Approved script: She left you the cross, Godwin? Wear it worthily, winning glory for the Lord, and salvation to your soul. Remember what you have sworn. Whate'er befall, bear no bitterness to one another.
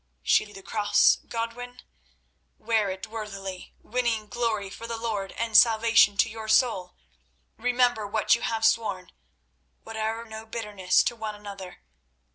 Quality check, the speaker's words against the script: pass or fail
fail